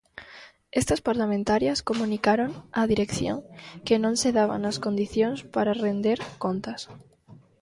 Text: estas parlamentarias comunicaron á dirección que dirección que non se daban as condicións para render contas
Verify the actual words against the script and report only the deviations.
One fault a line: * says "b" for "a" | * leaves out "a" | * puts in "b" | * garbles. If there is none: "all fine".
* leaves out "dirección que"